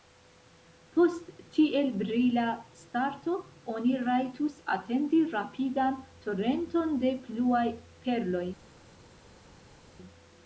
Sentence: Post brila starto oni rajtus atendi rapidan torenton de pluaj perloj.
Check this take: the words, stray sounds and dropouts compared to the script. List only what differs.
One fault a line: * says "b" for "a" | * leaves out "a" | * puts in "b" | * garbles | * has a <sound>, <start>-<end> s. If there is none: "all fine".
* puts in "tiel"